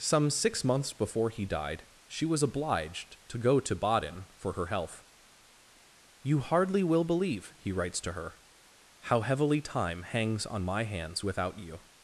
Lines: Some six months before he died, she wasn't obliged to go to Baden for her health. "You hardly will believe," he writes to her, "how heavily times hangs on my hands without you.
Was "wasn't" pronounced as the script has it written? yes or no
no